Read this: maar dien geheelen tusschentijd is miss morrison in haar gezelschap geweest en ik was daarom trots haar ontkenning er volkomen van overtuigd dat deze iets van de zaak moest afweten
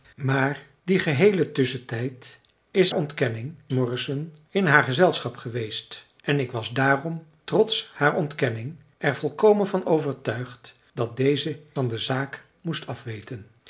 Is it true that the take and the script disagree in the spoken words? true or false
true